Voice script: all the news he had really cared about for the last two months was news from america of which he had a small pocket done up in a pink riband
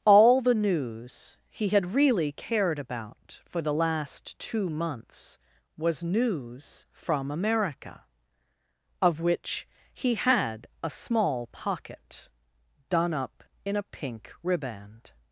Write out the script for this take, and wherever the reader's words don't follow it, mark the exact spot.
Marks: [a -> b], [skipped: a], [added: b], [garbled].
all the news he had really cared about for the last two months was news from america of which he had a small pocket done up in a pink riband